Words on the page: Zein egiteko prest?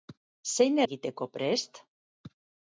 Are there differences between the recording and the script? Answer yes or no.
no